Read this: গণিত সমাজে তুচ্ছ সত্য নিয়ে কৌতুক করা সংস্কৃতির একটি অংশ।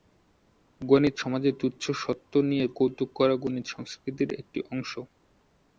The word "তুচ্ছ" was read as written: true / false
true